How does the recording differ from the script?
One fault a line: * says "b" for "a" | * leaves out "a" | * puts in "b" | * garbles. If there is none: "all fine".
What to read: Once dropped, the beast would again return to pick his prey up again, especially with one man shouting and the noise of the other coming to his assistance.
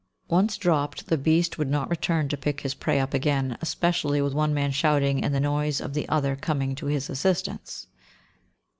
* says "not" for "again"